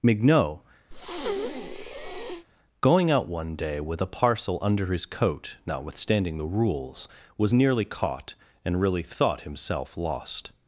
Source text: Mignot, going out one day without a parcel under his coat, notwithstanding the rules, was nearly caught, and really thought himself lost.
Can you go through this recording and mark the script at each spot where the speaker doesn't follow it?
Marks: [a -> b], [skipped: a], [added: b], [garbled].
Mignot, going out one day [without -> with] a parcel under his coat, notwithstanding the rules, was nearly caught, and really thought himself lost.